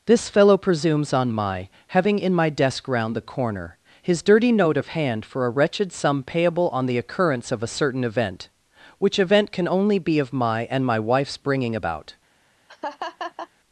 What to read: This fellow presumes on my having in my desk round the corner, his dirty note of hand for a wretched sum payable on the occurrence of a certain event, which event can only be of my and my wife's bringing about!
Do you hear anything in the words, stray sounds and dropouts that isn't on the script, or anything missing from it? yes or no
yes